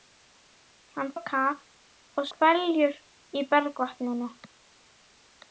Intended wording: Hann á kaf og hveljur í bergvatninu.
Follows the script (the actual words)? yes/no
yes